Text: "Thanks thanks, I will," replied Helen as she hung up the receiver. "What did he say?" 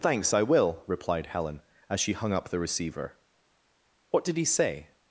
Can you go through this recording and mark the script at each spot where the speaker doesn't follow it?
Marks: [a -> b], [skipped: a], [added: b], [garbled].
"Thanks [skipped: thanks,] I will," replied Helen as she hung up the receiver. "What did he say?"